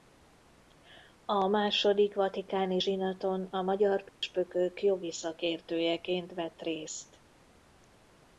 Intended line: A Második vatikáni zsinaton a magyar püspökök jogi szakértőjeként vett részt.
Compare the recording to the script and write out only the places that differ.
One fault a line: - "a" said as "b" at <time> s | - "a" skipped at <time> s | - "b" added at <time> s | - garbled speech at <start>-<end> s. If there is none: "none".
none